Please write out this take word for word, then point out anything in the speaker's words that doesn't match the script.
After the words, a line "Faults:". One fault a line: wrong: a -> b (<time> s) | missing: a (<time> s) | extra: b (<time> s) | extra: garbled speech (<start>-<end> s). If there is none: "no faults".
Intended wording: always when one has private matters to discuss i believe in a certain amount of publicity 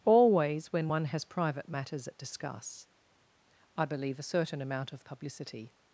always when one has private matters at discuss i believe a certain amount of publicity
Faults:
wrong: to -> at (2.1 s)
missing: in (4.2 s)